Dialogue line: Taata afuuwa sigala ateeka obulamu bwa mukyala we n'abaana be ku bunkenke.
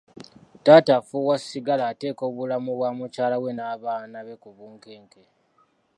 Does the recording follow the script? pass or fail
pass